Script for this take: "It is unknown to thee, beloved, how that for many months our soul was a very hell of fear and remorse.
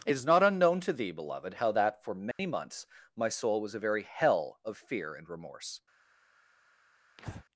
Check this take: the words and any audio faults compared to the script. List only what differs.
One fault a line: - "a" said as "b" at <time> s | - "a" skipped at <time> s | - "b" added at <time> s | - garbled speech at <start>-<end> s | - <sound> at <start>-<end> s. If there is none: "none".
- "not" added at 0.2 s
- dropout at 2.3-2.4 s
- "our" said as "my" at 3.2 s
- breath at 7.2-7.4 s